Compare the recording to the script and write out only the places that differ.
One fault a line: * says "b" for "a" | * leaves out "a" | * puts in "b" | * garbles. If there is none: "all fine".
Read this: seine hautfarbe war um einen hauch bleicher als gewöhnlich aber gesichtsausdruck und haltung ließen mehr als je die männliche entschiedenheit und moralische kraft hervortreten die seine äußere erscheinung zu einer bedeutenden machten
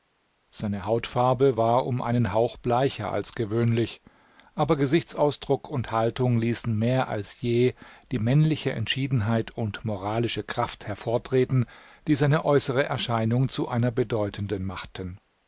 all fine